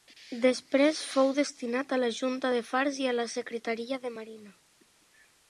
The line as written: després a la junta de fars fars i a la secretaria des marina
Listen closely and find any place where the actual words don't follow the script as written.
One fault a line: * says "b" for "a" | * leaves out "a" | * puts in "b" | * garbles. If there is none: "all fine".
* puts in "fou destinat"
* leaves out "fars"
* says "de" for "des"